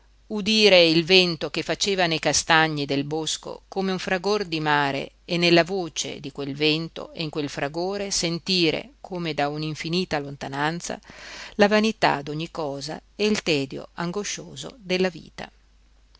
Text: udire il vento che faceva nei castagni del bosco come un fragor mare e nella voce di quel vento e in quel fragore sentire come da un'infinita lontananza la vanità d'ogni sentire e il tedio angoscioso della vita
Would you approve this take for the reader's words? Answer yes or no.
no